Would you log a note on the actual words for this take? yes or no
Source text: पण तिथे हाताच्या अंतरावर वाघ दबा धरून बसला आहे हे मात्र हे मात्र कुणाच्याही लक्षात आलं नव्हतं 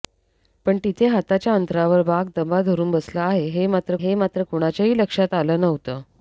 no